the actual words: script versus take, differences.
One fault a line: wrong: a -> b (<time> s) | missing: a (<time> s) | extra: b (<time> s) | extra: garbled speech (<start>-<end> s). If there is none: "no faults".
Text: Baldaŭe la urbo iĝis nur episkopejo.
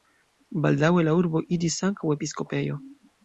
wrong: nur -> ankaŭ (1.9 s)